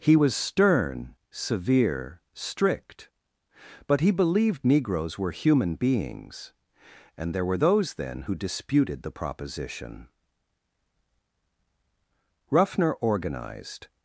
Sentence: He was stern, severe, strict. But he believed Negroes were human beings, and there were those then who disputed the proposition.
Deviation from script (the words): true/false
true